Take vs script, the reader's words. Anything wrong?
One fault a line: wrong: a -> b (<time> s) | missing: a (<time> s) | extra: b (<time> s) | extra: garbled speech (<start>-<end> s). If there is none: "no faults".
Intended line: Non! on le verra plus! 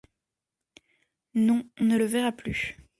extra: ne (1.8 s)